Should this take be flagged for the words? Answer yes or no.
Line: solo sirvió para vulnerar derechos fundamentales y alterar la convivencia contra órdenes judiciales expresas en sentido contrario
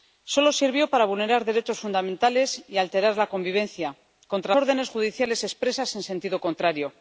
no